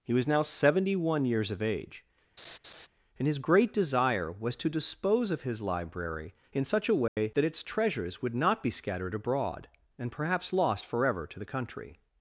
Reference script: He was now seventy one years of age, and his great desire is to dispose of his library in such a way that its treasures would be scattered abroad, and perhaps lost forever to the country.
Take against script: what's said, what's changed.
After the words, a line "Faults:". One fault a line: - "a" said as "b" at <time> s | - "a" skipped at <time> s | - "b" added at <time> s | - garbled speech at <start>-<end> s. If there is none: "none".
He was now seventy one years of age, and his great desire was to dispose of his library in such a way that its treasures would not be scattered abroad, and perhaps lost forever to the country.
Faults:
- "is" said as "was" at 4.3 s
- "not" added at 8.3 s